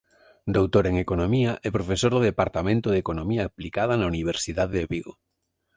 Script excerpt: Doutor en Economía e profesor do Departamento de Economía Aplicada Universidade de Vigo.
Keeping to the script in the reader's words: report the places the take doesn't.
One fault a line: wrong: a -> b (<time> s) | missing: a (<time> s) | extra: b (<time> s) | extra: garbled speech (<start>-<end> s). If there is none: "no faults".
extra: na (4.0 s)